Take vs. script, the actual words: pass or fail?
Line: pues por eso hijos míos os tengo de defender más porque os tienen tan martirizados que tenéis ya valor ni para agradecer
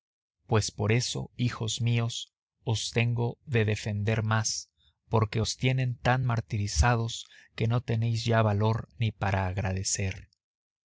fail